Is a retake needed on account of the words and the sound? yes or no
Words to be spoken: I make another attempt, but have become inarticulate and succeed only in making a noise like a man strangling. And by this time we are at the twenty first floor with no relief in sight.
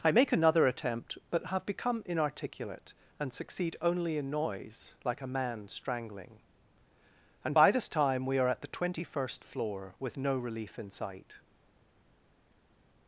yes